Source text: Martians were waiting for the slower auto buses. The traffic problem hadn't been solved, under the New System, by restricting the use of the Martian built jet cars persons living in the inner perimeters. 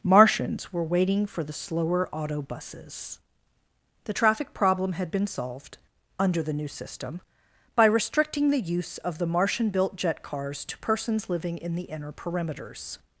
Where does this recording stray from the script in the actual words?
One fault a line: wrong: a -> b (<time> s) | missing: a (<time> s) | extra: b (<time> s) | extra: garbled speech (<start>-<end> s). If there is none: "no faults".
wrong: hadn't -> had (4.9 s)
extra: to (10.7 s)